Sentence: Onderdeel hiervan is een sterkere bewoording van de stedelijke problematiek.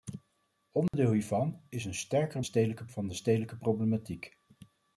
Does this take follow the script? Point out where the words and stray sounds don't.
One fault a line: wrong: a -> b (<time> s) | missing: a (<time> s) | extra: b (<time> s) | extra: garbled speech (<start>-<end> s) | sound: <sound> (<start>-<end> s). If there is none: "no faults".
sound: dropout (0.9-0.9 s)
wrong: bewoording -> stedelijke (2.4 s)